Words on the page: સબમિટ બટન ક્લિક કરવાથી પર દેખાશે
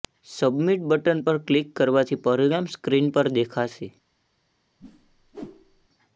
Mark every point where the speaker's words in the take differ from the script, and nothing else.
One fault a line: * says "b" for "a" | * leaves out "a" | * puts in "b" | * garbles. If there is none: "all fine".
* puts in "પર"
* puts in "પરિણામ સ્ક્રીન"